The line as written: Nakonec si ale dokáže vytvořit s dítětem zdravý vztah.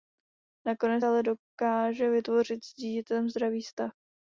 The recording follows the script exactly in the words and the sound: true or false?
false